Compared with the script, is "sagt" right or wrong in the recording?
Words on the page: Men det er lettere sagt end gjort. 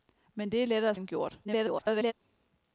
wrong